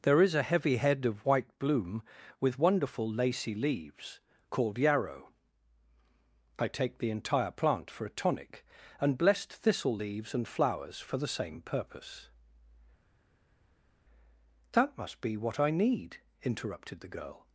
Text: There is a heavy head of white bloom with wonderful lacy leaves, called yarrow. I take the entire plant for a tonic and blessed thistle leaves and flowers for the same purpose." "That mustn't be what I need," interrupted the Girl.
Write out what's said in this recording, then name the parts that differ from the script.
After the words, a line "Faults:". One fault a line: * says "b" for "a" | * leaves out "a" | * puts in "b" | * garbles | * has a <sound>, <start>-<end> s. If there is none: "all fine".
There is a heavy head of white bloom with wonderful lacy leaves, called yarrow. I take the entire plant for a tonic and blessed thistle leaves and flowers for the same purpose." "That must be what I need," interrupted the Girl.
Faults:
* says "must" for "mustn't"